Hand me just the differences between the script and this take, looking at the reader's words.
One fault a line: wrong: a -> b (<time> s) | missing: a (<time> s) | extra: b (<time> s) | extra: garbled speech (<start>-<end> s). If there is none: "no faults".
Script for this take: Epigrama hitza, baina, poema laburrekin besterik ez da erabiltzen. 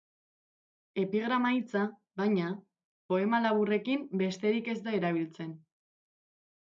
no faults